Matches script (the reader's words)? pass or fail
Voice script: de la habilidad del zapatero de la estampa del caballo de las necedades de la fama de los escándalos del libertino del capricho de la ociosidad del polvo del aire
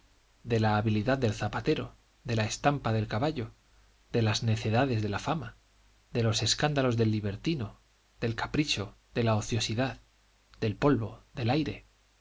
pass